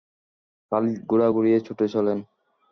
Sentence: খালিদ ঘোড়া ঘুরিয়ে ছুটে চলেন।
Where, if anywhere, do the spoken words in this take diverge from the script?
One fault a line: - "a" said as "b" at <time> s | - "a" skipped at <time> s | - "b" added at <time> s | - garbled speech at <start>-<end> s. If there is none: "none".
none